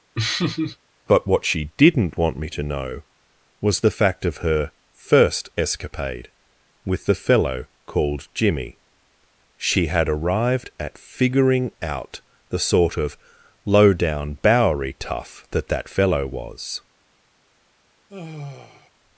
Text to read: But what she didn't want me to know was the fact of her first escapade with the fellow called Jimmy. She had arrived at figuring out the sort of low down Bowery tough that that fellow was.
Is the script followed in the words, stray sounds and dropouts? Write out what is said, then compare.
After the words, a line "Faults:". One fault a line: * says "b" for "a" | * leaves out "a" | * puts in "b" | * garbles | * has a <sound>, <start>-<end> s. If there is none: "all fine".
But what she didn't want me to know was the fact of her first escapade with the fellow called Jimmy. She had arrived at figuring out the sort of low down Bowery tough that that fellow was.
Faults:
* has a laugh, 0.1-0.8 s
* has a sigh, 18.1-18.9 s